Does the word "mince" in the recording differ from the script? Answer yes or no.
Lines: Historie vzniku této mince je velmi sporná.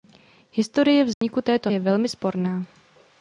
yes